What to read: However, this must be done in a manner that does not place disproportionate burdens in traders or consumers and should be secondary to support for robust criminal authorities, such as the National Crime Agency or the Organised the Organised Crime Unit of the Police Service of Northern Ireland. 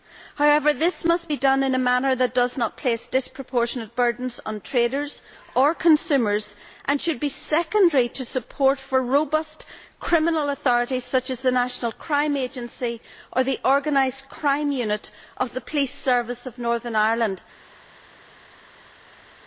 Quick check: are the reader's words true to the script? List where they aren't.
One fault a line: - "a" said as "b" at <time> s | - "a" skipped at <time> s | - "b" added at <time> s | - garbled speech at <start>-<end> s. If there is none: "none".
- "in" said as "on" at 4.4 s
- "the Organised" skipped at 14.3 s